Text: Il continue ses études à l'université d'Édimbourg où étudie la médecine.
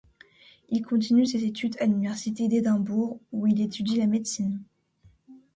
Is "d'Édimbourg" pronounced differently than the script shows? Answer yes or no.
no